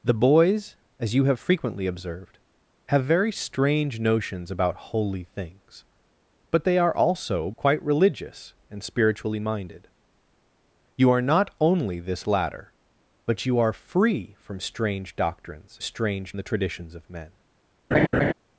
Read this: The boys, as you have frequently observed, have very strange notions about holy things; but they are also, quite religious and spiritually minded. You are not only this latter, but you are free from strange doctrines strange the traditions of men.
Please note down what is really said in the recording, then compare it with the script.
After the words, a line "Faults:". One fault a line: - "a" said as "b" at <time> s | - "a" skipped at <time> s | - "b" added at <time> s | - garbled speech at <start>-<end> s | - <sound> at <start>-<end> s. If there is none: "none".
The boys, as you have frequently observed, have very strange notions about holy things; but they are also, quite religious and spiritually minded. You are not only this latter, but you are free from strange doctrines strange the traditions of men.
Faults:
- laugh at 17.9-18.3 s